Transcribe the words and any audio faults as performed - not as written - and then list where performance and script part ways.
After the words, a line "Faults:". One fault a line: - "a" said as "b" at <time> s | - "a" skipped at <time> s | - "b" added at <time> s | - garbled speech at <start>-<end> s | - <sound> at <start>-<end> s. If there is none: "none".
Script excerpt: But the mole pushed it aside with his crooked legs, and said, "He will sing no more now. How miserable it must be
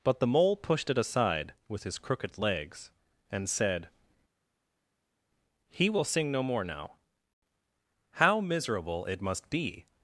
But the mole pushed it aside with his crooked legs, and said, "He will sing no more now. How miserable it must be
Faults:
none